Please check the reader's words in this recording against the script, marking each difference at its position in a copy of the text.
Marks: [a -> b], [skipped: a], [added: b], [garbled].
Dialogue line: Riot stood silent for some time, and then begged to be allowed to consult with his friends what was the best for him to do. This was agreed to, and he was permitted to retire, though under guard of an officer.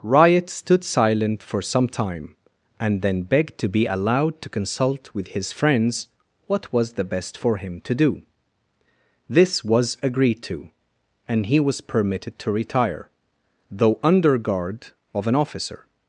Riot stood silent for some time, and then begged to be allowed to consult with his friends what was the best for him to do. This was agreed to, and he was permitted to retire, though under guard of an officer.